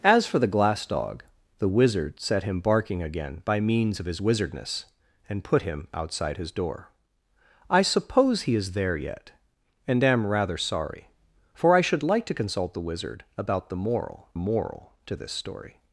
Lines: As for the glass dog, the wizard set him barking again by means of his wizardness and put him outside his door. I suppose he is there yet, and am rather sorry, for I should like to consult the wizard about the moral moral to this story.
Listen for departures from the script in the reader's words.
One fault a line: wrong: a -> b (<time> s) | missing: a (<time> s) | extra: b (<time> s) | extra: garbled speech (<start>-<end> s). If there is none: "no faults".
no faults